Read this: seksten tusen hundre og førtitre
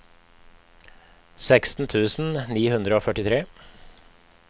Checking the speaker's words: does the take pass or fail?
fail